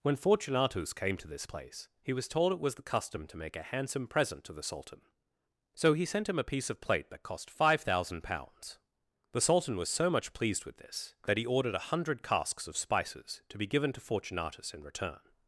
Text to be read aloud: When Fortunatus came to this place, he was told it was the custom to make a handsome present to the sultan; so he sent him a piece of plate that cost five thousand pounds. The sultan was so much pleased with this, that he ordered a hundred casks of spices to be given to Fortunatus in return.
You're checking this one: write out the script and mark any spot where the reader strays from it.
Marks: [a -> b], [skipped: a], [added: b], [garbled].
When Fortunatus came to this place, he was told it was the custom to make a handsome present to the sultan; so he sent him a piece of plate that cost five thousand pounds. The sultan was so much pleased with this, that he ordered a hundred casks of spices to be given to Fortunatus in return.